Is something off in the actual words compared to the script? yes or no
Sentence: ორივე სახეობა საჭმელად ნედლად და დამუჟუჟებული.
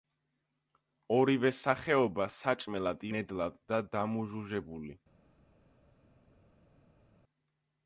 no